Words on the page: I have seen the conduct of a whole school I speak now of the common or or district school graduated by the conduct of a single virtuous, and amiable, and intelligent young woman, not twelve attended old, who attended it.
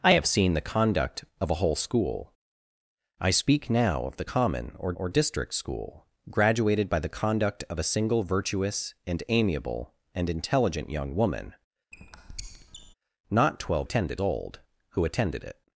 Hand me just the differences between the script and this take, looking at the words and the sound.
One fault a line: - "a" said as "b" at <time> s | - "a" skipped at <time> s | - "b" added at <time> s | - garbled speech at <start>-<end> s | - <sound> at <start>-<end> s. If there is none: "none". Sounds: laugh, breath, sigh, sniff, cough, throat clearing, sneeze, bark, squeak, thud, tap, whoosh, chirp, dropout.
- squeak at 11.9-12.9 s